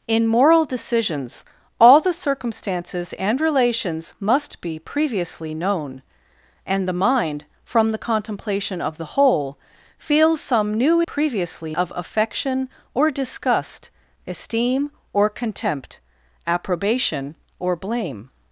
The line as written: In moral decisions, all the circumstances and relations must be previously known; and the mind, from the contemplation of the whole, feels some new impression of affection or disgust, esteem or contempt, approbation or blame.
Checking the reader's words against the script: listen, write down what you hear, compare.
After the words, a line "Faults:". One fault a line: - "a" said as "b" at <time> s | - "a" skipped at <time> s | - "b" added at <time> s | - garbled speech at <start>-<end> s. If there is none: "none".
In moral decisions, all the circumstances and relations must be previously known; and the mind, from the contemplation of the whole, feels some new previously of affection or disgust, esteem or contempt, approbation or blame.
Faults:
- "impression" said as "previously" at 11.0 s